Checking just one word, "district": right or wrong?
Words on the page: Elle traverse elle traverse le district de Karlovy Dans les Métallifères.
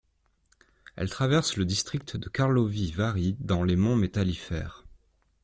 right